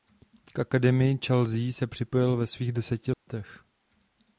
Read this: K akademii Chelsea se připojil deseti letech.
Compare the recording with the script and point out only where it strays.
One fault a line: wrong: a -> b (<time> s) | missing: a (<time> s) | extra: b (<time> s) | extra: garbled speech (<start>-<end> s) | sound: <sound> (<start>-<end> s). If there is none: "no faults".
extra: ve svých (2.4 s)
sound: dropout (3.1-3.3 s)